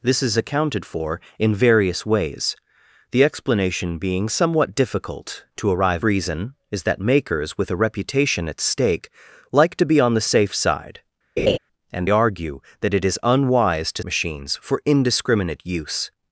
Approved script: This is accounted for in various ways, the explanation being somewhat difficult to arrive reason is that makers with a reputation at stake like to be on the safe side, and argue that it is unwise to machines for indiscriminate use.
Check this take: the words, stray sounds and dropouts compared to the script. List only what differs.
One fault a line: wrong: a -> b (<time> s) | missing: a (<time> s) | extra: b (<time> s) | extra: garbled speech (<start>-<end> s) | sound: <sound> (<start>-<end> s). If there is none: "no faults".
sound: laugh (11.4-11.6 s)